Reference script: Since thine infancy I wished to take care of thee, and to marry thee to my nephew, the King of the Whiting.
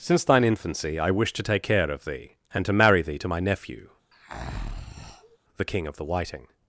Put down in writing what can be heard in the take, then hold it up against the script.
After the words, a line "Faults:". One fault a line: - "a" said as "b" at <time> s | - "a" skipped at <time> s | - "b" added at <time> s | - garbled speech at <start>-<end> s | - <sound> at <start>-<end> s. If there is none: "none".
Since thine infancy I wished to take care of thee, and to marry thee to my nephew, the King of the Whiting.
Faults:
- breath at 4.1-5.4 s